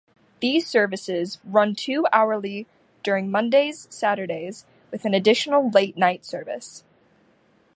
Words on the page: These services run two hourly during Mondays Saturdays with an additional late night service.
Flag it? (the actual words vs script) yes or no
no